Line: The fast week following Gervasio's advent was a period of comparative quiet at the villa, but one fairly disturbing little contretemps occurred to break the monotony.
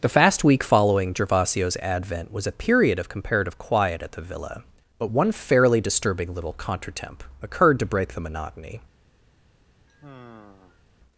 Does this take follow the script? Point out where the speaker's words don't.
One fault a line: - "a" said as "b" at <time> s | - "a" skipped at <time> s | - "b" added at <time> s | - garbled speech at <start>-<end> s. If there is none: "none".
none